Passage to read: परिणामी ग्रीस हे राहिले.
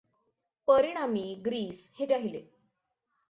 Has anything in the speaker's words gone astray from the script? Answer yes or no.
no